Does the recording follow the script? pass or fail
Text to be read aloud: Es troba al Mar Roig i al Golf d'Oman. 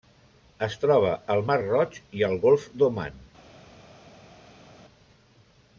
pass